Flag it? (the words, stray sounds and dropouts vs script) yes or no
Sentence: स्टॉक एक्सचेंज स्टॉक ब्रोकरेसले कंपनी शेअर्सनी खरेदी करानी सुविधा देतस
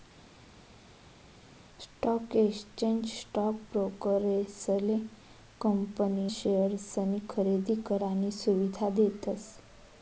no